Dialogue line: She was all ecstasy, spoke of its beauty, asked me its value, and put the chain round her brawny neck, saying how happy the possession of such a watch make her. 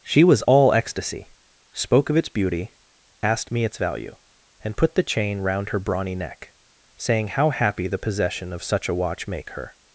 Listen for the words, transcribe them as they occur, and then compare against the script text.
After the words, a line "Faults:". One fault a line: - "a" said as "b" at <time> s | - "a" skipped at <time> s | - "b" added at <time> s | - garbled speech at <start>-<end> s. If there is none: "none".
She was all ecstasy, spoke of its beauty, asked me its value, and put the chain round her brawny neck, saying how happy the possession of such a watch make her.
Faults:
none